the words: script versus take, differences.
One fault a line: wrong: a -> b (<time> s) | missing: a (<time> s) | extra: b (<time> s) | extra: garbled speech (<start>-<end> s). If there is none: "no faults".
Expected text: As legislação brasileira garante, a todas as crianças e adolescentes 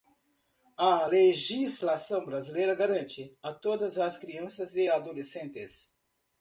wrong: As -> A (0.8 s)